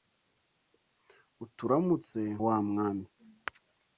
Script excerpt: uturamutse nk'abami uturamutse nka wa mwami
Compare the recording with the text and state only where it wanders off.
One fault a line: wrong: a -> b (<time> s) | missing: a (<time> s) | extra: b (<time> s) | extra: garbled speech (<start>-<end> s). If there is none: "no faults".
missing: nk'abami uturamutse nka (2.2 s)